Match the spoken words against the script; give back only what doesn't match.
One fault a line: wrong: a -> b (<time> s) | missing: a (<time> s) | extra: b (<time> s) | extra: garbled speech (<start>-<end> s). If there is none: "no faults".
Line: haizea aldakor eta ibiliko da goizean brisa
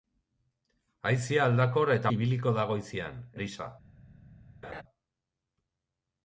no faults